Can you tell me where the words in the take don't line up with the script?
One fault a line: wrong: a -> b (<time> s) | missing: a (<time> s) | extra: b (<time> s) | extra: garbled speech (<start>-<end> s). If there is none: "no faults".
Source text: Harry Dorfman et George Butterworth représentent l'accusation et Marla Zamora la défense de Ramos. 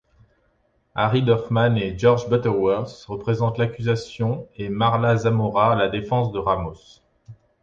no faults